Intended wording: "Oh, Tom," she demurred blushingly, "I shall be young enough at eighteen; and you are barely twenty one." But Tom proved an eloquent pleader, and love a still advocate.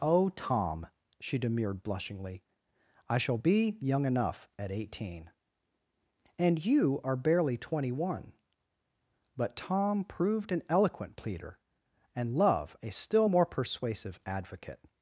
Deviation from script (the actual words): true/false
true